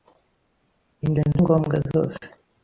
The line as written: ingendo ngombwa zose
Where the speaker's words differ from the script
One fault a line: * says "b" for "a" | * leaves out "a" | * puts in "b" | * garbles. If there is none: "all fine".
all fine